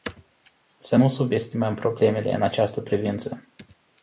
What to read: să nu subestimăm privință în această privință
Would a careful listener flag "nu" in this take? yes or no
no